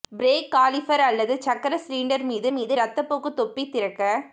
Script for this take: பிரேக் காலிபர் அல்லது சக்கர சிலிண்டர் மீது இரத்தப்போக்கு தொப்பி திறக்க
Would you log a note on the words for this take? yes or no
yes